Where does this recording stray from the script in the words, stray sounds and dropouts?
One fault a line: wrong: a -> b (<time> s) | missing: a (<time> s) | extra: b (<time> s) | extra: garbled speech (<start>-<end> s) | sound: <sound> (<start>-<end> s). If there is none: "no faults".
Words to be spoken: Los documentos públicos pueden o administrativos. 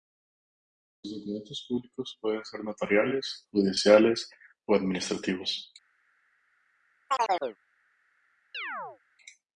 extra: ser notariales judiciales (2.4 s)
sound: chirp (7.1-7.6 s)
sound: chirp (8.5-9.0 s)